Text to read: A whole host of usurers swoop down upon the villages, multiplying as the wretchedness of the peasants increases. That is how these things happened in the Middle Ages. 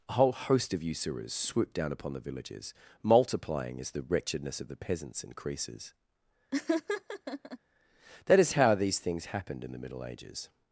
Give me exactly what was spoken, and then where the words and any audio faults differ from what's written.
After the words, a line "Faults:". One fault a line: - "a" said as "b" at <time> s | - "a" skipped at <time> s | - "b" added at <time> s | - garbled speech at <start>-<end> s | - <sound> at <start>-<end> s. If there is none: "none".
A whole host of usurers swoop down upon the villages, multiplying as the wretchedness of the peasants increases. That is how these things happened in the Middle Ages.
Faults:
- laugh at 6.5-7.6 s